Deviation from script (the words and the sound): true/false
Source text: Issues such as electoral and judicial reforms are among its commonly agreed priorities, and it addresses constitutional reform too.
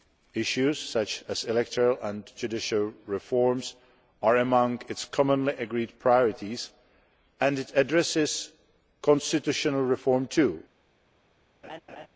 true